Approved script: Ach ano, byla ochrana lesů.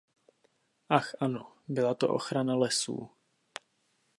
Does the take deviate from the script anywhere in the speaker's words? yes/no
yes